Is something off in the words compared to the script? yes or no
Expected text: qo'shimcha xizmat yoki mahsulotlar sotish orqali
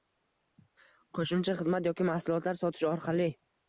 no